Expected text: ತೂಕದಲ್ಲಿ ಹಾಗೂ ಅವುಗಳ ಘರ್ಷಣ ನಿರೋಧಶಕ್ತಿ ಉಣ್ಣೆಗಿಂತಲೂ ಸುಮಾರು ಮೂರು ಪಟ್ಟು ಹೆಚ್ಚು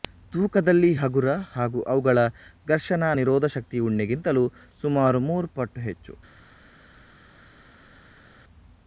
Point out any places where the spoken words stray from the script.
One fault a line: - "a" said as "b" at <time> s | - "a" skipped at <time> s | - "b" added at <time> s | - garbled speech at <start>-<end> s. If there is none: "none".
- "ಹಗುರ" added at 1.0 s